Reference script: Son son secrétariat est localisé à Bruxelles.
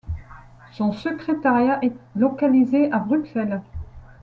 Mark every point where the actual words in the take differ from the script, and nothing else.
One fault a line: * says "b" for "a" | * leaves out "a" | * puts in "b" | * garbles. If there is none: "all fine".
* leaves out "son"